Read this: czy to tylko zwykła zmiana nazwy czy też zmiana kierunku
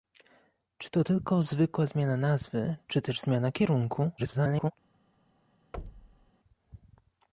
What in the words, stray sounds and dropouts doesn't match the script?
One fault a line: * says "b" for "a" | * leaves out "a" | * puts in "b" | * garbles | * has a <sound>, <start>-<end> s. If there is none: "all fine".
* garbles
* has a thud, 5.7-6.3 s